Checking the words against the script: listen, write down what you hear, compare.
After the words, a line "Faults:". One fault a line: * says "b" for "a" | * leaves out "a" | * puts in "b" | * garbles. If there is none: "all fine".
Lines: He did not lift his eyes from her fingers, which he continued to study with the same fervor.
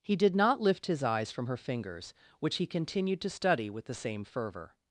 He did not lift his eyes from her fingers, which he continued to study with the same fervor.
Faults:
all fine